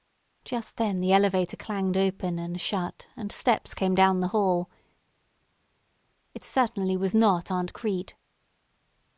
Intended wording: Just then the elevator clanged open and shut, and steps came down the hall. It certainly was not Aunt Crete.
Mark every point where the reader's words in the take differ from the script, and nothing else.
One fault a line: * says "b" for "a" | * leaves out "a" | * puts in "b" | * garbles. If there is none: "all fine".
all fine